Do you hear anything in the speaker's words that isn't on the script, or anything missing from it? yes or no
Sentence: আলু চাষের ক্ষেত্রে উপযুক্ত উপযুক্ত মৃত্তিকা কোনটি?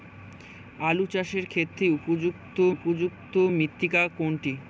no